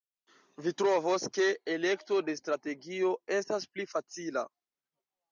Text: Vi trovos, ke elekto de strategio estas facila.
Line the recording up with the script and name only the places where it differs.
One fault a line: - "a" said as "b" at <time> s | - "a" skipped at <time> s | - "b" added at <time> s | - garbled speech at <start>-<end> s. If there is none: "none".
- "pli" added at 3.8 s